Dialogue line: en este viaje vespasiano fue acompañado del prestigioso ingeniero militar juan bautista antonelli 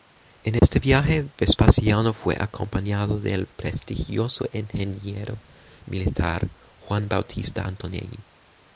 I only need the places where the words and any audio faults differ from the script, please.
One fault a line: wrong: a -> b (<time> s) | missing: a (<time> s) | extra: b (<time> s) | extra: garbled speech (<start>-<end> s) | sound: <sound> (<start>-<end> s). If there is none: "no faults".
sound: dropout (0.6-0.6 s)